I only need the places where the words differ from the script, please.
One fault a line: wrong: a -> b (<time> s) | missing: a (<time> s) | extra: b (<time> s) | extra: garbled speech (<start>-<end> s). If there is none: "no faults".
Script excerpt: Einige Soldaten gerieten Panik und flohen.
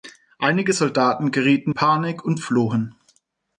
no faults